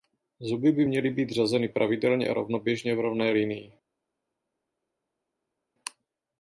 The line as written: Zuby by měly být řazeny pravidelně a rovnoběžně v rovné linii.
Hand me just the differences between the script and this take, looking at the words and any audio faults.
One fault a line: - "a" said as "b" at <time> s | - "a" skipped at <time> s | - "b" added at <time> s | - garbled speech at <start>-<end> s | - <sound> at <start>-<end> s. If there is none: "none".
none